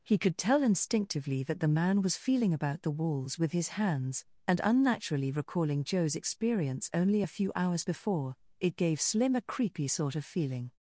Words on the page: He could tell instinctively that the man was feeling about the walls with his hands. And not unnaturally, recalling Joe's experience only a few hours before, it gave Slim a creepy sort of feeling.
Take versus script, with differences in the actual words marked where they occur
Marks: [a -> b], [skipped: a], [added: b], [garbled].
He could tell instinctively that the man was feeling about the walls with his hands. And [skipped: not] unnaturally, recalling Joe's experience only a few hours before, it gave Slim a creepy sort of feeling.